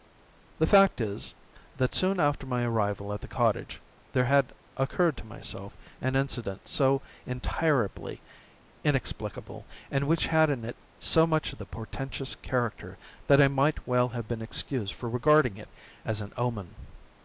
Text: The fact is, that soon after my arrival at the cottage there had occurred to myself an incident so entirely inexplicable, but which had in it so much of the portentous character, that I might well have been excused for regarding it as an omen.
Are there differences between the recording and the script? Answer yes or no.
yes